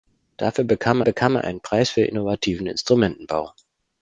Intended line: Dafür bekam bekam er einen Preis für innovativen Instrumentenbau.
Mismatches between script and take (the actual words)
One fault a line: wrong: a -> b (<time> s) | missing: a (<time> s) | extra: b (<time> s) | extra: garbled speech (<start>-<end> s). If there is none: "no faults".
no faults